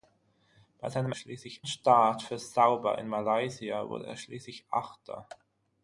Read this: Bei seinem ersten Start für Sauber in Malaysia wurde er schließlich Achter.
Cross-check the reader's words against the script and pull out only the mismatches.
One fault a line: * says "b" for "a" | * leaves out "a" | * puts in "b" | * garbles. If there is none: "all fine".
* says "schließlich" for "ersten"